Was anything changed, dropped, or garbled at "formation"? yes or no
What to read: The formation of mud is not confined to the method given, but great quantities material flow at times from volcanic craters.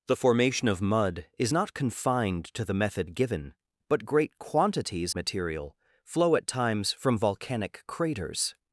no